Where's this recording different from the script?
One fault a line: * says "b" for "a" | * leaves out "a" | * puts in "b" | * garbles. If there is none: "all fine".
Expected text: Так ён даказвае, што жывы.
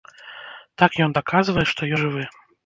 all fine